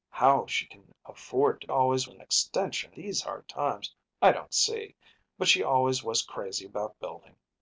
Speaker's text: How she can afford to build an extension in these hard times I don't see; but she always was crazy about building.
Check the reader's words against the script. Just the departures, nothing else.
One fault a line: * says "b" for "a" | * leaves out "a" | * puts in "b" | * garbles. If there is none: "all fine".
* says "always" for "build"
* leaves out "in"